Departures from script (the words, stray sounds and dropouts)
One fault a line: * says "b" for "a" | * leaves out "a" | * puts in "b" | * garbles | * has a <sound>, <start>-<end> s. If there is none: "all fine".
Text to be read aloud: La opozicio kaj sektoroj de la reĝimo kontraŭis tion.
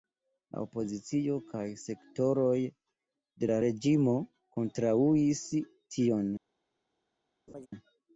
* has a laugh, 7.5-7.7 s